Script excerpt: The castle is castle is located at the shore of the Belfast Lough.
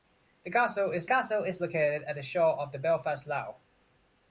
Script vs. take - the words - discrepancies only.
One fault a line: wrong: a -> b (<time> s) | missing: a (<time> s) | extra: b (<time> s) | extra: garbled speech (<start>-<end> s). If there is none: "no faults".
no faults